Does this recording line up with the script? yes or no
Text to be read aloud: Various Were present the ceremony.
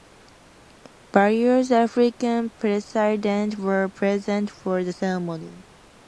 no